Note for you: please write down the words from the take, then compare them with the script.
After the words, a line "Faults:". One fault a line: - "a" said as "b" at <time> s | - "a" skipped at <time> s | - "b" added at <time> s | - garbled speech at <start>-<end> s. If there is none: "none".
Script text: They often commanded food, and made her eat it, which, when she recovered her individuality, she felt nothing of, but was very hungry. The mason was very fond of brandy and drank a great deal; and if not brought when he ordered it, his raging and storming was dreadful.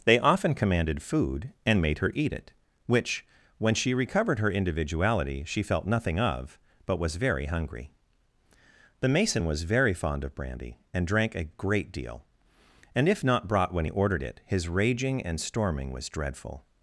They often commanded food, and made her eat it, which, when she recovered her individuality, she felt nothing of, but was very hungry. The mason was very fond of brandy and drank a great deal; and if not brought when he ordered it, his raging and storming was dreadful.
Faults:
none